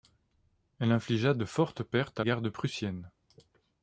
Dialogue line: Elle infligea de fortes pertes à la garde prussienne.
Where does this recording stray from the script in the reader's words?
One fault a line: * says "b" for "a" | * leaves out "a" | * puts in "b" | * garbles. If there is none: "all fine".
* leaves out "la"